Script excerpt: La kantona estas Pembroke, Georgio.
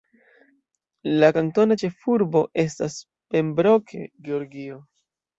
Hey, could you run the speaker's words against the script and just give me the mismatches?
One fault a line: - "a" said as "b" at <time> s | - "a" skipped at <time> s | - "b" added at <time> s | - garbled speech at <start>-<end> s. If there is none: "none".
- "ĉefurbo" added at 1.8 s